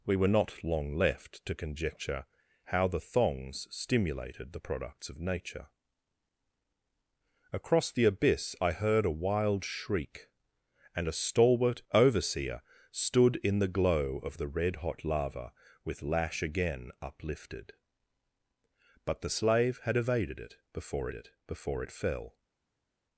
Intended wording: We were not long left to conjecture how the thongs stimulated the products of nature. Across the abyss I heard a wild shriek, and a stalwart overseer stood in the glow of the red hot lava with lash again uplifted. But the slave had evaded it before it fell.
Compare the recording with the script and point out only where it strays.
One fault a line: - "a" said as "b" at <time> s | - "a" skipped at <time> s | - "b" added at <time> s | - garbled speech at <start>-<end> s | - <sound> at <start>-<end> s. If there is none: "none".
- "before it" added at 21.5 s